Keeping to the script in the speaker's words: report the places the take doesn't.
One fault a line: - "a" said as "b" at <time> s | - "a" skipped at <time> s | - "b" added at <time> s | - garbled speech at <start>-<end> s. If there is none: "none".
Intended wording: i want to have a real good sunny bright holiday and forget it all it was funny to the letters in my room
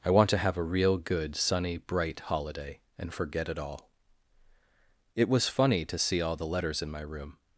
- "see all" added at 6.0 s